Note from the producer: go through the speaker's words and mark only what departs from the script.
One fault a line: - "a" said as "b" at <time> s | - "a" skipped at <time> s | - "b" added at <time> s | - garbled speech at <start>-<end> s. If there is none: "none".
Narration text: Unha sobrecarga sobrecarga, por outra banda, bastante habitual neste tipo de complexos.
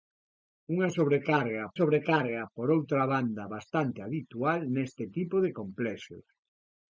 none